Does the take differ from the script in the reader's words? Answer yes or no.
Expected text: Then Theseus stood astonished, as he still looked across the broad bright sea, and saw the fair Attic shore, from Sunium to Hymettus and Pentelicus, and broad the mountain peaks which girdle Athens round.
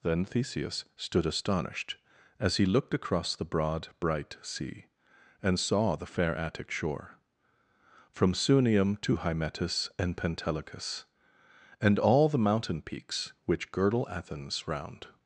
yes